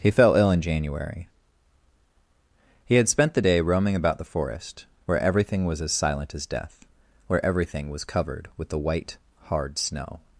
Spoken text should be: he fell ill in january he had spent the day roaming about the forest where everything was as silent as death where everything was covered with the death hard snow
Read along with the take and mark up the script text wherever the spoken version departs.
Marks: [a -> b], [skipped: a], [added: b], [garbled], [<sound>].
he fell ill in january he had spent the day roaming about the forest where everything was as silent as death where everything was covered with the [death -> white] hard snow